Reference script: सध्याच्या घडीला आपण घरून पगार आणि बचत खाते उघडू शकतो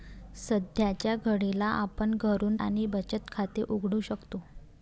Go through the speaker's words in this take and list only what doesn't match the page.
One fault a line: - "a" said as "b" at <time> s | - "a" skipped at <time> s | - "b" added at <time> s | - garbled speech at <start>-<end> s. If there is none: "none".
- "पगार" skipped at 2.5 s